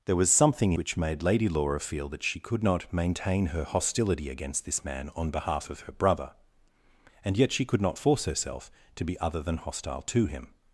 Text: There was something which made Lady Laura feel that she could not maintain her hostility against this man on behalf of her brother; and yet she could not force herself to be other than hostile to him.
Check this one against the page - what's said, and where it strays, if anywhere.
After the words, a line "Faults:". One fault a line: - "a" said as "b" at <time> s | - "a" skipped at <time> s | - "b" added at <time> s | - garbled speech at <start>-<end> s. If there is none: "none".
There was something which made Lady Laura feel that she could not maintain her hostility against this man on behalf of her brother; and yet she could not force herself to be other than hostile to him.
Faults:
none